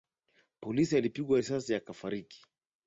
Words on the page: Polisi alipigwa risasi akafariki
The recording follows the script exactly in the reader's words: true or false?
true